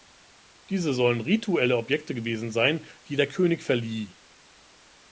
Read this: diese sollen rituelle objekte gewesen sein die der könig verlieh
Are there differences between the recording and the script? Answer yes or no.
no